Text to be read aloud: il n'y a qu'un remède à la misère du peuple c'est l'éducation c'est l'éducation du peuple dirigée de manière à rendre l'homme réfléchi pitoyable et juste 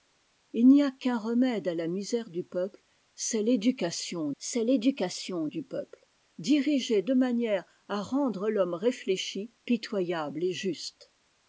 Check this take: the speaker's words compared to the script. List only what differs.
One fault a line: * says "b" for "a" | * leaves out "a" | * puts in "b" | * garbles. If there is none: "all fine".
all fine